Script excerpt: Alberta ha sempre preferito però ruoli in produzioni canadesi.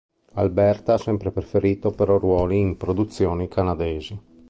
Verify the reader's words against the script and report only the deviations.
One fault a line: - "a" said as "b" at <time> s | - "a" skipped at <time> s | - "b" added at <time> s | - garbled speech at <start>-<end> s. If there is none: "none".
none